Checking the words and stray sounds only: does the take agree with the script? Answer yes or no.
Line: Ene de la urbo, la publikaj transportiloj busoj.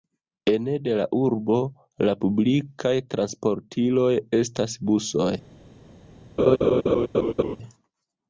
no